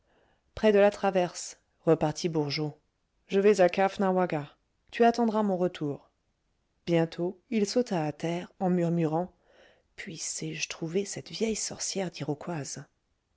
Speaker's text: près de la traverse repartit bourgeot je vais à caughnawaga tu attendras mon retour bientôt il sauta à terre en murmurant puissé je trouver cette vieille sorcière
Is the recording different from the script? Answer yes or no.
no